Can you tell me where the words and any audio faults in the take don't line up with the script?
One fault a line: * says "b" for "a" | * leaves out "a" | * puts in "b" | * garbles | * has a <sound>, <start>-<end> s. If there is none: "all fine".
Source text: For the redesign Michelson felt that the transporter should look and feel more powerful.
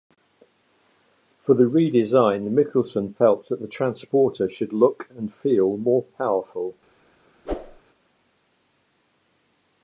* has a whoosh, 7.5-7.8 s